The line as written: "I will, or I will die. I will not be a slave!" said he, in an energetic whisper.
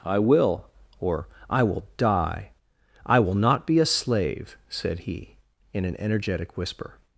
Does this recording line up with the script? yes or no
yes